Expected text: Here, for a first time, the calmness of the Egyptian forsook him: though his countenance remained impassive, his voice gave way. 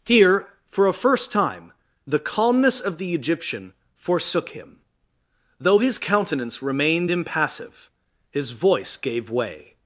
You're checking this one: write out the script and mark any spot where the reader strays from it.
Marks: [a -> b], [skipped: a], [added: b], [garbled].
Here, for a first time, the calmness of the Egyptian forsook him: though his countenance remained impassive, his voice gave way.